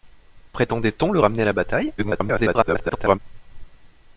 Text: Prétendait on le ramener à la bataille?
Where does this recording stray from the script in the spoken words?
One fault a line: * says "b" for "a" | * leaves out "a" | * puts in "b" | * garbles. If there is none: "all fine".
* garbles